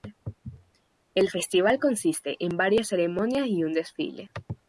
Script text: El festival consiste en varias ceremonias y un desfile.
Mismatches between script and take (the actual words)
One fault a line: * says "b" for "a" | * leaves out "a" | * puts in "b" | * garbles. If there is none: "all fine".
all fine